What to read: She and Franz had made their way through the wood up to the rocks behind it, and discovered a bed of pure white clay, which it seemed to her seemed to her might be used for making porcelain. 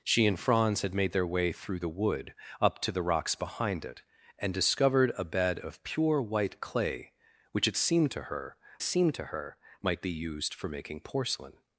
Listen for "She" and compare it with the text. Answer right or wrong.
right